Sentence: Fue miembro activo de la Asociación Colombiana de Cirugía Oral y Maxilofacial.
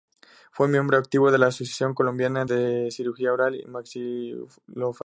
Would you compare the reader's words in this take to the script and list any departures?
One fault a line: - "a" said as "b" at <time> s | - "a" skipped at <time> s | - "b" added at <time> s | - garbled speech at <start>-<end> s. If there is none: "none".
none